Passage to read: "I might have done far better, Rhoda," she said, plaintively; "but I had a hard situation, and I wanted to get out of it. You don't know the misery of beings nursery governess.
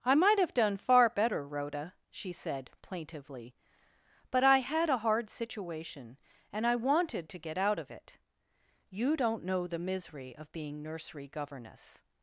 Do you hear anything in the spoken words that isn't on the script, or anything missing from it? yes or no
yes